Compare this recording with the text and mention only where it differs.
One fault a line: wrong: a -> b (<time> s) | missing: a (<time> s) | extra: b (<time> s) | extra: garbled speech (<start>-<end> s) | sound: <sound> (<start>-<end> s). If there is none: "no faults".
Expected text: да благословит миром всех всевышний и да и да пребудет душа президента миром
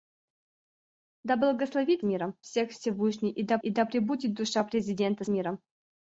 no faults